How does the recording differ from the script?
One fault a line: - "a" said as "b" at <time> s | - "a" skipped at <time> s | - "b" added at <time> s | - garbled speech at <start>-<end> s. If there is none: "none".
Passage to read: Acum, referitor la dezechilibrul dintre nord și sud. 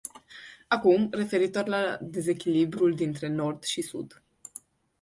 none